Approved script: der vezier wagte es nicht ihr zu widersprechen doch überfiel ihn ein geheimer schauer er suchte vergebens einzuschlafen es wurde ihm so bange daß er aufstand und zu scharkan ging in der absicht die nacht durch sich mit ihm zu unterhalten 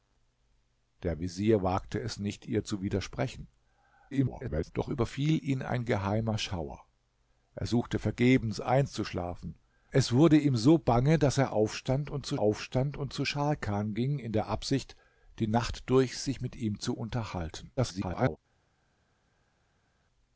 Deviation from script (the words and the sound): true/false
true